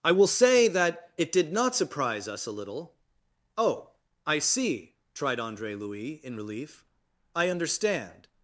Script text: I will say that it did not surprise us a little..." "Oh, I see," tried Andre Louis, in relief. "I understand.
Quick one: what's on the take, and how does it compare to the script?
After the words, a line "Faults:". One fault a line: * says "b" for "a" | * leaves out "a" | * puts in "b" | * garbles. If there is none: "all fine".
I will say that it did not surprise us a little..." "Oh, I see," tried Andre Louis, in relief. "I understand.
Faults:
all fine